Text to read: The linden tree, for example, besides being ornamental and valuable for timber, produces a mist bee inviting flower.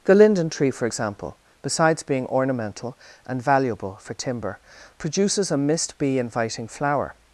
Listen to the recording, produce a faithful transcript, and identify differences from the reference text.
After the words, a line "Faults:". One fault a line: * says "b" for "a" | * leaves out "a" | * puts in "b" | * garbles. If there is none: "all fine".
The linden tree, for example, besides being ornamental and valuable for timber, produces a mist bee inviting flower.
Faults:
all fine